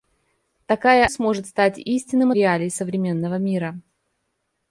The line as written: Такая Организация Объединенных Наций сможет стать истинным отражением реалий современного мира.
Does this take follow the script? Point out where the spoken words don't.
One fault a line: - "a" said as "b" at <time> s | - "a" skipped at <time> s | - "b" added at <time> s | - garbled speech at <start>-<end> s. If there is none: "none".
- "Организация Объединенных Наций" skipped at 1.1 s
- "отражением" skipped at 2.3 s